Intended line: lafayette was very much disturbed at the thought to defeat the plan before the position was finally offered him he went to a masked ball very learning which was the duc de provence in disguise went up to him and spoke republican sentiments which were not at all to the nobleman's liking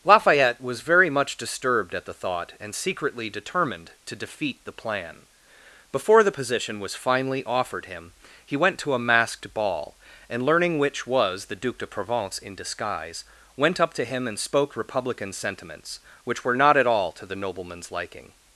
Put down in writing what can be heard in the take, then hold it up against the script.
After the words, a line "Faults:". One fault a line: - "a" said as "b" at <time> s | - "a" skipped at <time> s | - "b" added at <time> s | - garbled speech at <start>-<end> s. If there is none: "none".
lafayette was very much disturbed at the thought and secretly determined to defeat the plan before the position was finally offered him he went to a masked ball and learning which was the duc de provence in disguise went up to him and spoke republican sentiments which were not at all to the nobleman's liking
Faults:
- "and secretly determined" added at 2.6 s
- "very" said as "and" at 10.3 s